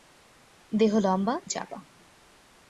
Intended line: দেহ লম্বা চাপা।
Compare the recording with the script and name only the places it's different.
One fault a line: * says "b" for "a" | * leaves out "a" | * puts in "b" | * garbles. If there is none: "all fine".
all fine